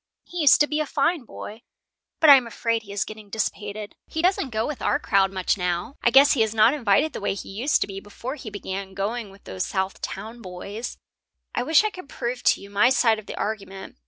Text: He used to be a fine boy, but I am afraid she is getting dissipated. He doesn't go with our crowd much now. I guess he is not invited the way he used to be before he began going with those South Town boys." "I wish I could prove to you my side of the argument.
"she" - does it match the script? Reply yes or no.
no